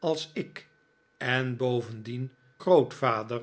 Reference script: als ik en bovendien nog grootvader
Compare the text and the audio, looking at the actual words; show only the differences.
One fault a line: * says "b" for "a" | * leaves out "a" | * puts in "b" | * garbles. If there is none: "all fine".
* leaves out "nog"